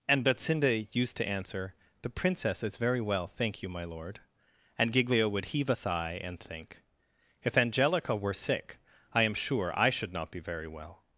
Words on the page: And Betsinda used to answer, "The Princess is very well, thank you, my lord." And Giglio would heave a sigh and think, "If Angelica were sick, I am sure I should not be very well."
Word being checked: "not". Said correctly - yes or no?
yes